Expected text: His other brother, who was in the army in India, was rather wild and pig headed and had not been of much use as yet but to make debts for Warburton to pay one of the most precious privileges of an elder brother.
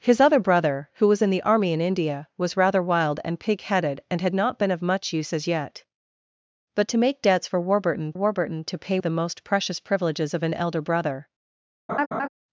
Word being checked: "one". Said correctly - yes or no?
no